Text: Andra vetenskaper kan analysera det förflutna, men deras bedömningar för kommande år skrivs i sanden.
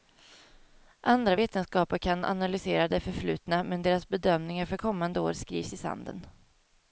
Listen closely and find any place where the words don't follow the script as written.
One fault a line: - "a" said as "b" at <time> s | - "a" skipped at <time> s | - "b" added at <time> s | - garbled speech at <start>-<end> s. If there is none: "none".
none